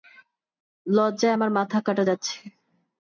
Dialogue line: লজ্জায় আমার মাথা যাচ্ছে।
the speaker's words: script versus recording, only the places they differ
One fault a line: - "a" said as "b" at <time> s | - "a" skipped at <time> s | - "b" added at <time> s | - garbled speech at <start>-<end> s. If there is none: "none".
- "কাটা" added at 1.8 s